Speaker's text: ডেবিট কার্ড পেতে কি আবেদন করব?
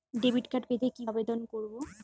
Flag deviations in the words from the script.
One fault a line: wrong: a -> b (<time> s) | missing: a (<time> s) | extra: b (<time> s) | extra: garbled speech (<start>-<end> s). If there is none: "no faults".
no faults